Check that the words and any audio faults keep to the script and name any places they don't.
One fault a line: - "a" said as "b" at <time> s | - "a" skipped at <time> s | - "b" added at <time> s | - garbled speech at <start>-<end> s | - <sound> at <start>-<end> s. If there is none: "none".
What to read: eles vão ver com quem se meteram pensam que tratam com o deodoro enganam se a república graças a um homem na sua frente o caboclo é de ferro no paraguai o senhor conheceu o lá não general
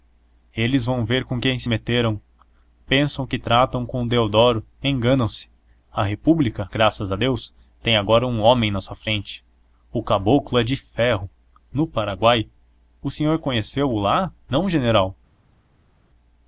- "deus tem agora" added at 7.2 s